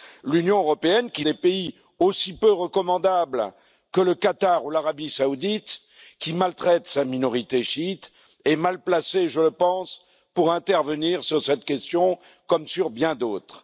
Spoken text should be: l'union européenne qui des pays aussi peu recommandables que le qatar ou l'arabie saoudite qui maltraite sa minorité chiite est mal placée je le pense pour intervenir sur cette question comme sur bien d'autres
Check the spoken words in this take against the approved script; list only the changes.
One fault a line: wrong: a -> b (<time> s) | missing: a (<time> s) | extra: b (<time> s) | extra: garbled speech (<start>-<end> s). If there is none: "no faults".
no faults